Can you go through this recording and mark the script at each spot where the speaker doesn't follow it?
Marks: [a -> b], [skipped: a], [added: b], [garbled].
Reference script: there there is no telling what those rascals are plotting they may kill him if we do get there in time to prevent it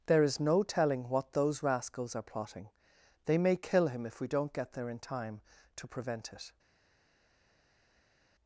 there [skipped: there] is no telling what those rascals are plotting they may kill him if we [do -> don't] get there in time to prevent it